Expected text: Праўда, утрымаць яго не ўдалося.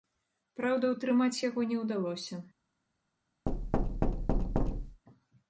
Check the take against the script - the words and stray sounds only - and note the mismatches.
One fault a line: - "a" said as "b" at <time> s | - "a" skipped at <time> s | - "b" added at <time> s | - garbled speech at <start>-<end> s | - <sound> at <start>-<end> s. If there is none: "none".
- thud at 3.5-5.0 s